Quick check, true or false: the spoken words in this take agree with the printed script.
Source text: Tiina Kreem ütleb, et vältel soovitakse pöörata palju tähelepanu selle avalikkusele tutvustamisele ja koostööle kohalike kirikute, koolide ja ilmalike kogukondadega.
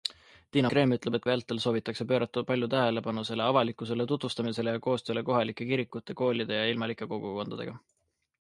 true